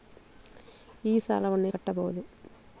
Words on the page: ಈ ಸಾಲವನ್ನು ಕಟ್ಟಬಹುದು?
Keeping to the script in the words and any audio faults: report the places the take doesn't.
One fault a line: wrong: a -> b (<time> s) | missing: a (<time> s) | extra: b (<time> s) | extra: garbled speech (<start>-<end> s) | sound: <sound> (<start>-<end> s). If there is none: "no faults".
no faults